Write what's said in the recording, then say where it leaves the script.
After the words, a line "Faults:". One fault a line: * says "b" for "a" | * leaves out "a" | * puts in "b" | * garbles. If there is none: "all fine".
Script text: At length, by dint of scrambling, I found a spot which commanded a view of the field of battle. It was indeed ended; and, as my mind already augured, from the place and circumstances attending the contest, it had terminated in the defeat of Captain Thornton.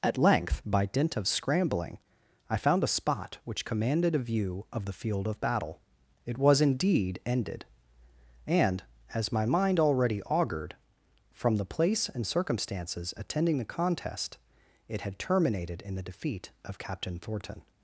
At length, by dint of scrambling, I found a spot which commanded a view of the field of battle. It was indeed ended; and, as my mind already augured, from the place and circumstances attending the contest, it had terminated in the defeat of Captain Thornton.
Faults:
all fine